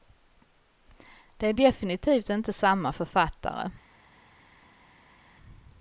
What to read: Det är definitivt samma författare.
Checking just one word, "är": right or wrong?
right